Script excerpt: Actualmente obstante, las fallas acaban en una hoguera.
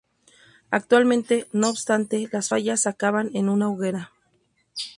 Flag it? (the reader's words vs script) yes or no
yes